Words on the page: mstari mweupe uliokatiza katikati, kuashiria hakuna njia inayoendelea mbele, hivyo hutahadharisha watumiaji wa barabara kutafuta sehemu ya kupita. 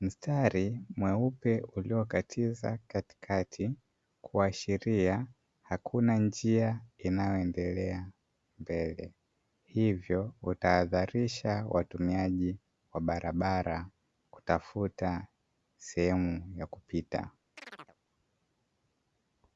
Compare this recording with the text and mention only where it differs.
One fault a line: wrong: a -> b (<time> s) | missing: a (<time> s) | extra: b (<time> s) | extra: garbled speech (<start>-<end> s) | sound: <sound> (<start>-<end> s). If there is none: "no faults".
sound: chirp (17.6-18.0 s)